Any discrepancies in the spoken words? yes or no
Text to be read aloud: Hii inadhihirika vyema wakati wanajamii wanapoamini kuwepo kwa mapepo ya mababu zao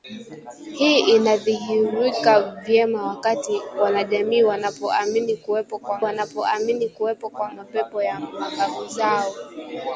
yes